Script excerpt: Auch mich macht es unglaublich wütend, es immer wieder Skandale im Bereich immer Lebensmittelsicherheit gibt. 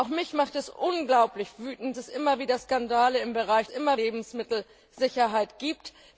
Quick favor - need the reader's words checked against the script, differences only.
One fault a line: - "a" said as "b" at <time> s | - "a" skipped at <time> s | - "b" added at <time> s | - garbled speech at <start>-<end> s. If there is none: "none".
none